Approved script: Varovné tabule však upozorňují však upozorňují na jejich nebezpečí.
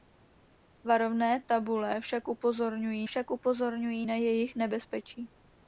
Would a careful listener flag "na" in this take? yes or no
no